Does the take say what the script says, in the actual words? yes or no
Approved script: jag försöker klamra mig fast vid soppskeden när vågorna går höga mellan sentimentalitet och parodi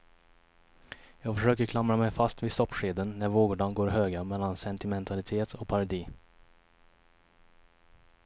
yes